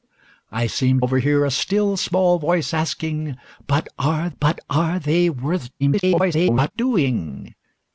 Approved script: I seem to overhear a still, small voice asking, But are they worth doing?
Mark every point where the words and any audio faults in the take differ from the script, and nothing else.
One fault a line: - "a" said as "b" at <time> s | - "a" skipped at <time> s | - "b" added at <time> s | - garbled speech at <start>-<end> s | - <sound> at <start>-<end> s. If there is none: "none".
- "to" skipped at 1.0 s
- "But are" added at 4.4 s
- garbled speech at 5.8-6.7 s